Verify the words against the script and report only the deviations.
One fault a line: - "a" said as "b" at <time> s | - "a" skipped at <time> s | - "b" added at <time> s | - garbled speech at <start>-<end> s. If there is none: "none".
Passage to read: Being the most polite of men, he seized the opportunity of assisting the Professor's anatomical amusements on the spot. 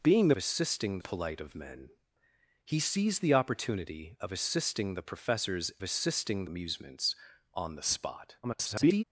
- "most" said as "assisting" at 0.4 s
- "anatomical" said as "assisting" at 5.8 s
- garbled speech at 8.4-9.0 s